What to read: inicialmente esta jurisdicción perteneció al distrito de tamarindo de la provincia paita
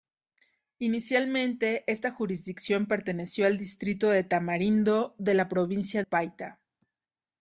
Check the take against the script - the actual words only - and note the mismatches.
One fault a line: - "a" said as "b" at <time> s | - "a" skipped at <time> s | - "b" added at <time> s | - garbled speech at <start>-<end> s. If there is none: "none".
none